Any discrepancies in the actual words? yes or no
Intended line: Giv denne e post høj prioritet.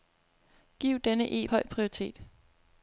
yes